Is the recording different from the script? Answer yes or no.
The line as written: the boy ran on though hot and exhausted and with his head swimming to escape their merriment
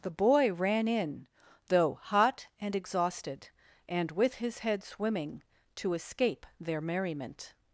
yes